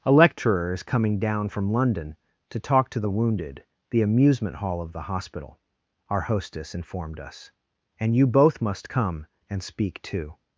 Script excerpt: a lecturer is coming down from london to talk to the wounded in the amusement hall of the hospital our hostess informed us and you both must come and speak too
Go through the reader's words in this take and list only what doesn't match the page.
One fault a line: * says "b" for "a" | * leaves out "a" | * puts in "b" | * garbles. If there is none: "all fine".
* leaves out "in"